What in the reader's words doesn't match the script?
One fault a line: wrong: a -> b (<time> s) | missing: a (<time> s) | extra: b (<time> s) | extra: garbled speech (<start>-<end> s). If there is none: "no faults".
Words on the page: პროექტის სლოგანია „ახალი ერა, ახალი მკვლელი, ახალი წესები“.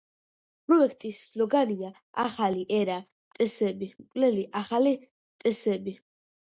wrong: ახალი -> წესები (3.4 s)